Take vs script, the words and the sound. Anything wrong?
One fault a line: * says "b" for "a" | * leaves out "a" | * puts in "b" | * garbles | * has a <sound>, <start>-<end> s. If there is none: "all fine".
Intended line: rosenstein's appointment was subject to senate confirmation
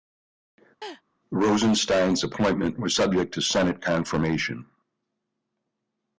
* has a laugh, 0.8-1.0 s